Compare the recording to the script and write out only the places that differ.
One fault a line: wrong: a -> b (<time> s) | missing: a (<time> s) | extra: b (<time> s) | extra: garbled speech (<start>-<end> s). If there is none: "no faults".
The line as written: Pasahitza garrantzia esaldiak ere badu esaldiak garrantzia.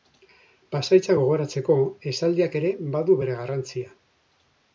wrong: garrantzia -> gogoratzeko (1.2 s)
wrong: esaldiak -> bere (3.2 s)